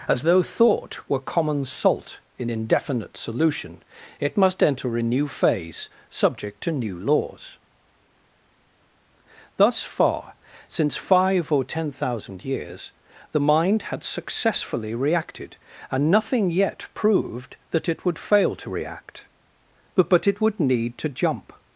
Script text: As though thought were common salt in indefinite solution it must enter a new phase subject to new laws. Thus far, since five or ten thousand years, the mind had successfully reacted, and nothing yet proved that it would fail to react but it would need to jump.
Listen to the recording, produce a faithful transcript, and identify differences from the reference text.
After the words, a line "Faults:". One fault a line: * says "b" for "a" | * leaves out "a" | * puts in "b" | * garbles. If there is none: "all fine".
As though thought were common salt in indefinite solution it must enter a new phase subject to new laws. Thus far, since five or ten thousand years, the mind had successfully reacted, and nothing yet proved that it would fail to react but but it would need to jump.
Faults:
* puts in "but"